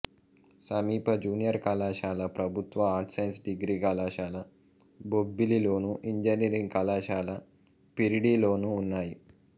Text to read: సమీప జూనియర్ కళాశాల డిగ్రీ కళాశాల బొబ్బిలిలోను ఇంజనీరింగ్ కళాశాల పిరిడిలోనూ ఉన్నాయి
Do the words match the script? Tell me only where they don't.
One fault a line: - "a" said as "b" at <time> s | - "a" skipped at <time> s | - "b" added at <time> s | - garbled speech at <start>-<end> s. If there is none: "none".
- "ప్రభుత్వ ఆర్ట్స్ సైన్స్" added at 2.4 s